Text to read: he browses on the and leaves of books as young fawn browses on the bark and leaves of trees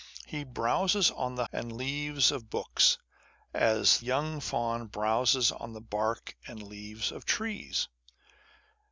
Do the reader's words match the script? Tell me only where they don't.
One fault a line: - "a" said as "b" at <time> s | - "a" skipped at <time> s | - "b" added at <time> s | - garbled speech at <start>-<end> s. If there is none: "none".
none